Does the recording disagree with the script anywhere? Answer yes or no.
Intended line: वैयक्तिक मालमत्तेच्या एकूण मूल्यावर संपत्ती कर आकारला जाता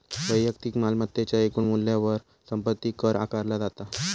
no